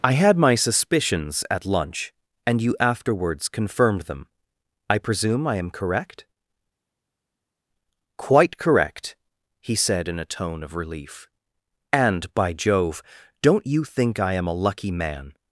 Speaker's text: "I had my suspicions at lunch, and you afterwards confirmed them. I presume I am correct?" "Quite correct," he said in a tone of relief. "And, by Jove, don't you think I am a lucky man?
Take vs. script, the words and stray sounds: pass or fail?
pass